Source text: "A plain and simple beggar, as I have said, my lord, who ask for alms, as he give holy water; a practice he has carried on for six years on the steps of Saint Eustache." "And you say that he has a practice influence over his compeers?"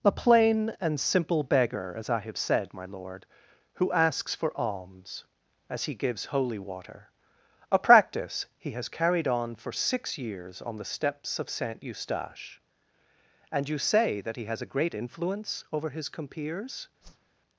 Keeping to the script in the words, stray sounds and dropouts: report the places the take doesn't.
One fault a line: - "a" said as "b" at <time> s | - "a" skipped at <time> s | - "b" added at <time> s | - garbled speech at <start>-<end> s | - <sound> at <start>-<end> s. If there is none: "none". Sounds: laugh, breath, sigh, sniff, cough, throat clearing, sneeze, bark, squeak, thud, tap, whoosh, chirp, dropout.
- "ask" said as "asks" at 3.9 s
- "give" said as "gives" at 5.9 s
- "practice" said as "great" at 14.7 s
- whoosh at 17.0-17.3 s